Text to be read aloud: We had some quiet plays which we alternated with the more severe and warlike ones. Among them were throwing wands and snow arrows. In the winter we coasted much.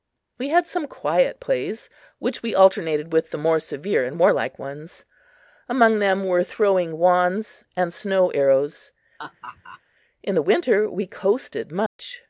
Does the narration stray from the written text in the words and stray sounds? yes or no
yes